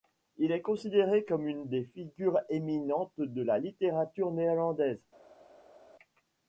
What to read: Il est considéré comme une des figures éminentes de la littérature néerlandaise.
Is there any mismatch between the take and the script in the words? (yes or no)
no